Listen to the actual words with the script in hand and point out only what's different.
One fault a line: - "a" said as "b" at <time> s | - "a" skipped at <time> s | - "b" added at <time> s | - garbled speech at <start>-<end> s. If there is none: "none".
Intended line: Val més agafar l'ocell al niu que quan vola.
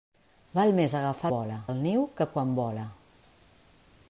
- "l'ocell" said as "vola" at 1.3 s